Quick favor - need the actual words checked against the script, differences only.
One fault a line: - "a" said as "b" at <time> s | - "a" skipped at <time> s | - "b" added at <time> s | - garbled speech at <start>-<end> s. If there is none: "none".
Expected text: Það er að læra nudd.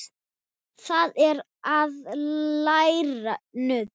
none